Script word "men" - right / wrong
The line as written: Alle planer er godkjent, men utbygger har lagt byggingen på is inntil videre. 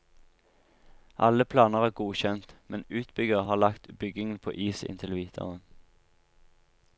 right